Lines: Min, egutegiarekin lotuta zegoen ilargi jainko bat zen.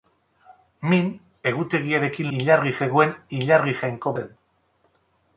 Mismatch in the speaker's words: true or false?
true